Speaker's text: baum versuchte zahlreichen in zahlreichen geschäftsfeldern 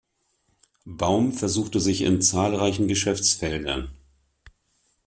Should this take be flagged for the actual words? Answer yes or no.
yes